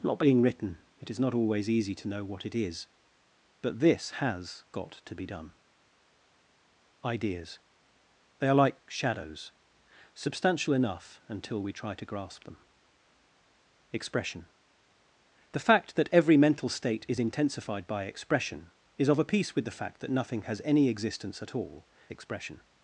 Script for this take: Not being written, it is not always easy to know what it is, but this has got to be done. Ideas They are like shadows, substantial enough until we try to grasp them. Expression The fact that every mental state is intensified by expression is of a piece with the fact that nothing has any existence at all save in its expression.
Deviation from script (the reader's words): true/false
true